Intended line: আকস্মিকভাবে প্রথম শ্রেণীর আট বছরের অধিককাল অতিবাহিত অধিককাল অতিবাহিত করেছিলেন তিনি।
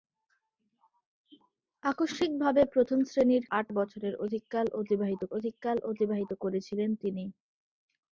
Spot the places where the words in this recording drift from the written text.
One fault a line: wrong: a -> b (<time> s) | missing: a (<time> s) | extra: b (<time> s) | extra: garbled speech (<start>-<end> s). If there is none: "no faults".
no faults